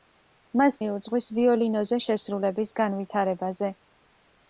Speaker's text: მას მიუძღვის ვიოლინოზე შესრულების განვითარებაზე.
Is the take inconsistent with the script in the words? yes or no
no